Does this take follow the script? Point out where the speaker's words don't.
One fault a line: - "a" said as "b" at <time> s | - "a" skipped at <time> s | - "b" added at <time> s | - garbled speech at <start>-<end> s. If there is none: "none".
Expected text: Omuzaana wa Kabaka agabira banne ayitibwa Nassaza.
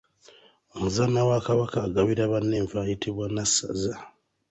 - "enva" added at 2.6 s